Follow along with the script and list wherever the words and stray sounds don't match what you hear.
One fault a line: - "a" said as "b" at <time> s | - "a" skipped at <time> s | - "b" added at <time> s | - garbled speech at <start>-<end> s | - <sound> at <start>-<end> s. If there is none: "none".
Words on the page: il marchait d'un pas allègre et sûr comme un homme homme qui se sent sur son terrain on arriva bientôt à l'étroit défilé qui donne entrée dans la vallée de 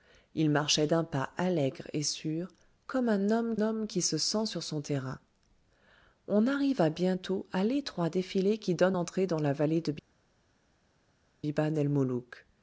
none